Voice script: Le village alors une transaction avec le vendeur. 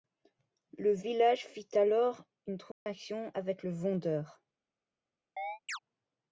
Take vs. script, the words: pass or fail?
fail